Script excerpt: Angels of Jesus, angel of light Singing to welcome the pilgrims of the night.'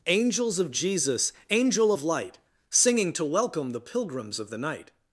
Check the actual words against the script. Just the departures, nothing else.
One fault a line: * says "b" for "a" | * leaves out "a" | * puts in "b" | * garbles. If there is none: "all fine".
all fine